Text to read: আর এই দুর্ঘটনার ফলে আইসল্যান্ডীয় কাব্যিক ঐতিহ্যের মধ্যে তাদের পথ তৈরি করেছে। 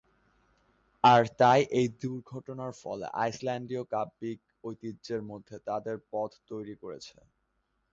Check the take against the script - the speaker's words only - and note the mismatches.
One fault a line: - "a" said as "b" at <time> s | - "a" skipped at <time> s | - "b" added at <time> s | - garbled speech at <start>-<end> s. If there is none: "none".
- "তাই" added at 1.4 s